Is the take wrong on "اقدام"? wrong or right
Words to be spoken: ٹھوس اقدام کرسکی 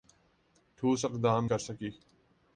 right